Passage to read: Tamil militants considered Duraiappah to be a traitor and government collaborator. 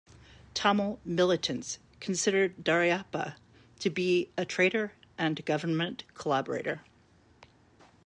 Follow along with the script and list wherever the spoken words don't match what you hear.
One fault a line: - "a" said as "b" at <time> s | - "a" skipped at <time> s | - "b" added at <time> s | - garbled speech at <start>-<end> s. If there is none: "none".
none